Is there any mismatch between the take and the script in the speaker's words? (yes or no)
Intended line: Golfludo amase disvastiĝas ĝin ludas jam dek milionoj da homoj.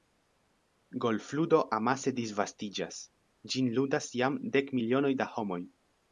no